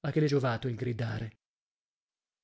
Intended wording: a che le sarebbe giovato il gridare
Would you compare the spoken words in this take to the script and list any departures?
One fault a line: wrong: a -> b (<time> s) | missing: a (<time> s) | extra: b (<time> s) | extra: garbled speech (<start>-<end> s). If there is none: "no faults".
missing: sarebbe (0.3 s)